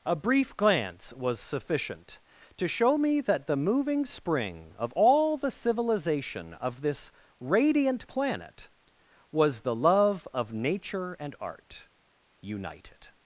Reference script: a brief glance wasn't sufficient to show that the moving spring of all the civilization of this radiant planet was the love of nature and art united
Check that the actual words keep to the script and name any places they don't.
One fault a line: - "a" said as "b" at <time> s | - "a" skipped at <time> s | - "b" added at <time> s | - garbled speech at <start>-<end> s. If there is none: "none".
- "wasn't" said as "was" at 1.1 s
- "me" added at 3.0 s